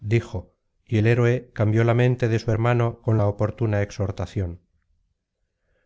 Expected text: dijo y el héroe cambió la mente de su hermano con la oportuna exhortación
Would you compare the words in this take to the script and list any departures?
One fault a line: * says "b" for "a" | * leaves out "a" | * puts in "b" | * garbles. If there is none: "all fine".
all fine